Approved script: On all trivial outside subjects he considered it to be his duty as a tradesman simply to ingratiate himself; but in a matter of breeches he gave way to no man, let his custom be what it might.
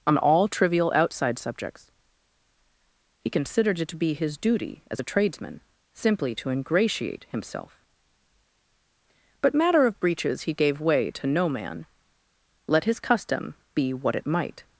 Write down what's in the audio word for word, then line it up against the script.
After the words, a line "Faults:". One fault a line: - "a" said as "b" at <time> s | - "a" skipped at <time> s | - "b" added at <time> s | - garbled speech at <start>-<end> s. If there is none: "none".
On all trivial outside subjects he considered it to be his duty as a tradesman simply to ingratiate himself; but matter of breeches he gave way to no man, let his custom be what it might.
Faults:
- "in a" skipped at 9.5 s